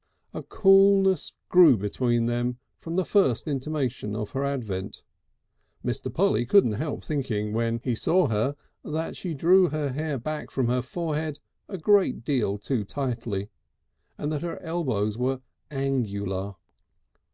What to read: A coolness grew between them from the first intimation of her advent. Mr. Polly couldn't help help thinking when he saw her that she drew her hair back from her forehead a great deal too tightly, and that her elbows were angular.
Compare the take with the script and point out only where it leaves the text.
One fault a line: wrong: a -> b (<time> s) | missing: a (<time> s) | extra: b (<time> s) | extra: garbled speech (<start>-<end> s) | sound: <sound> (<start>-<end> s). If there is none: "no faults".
missing: help (7.0 s)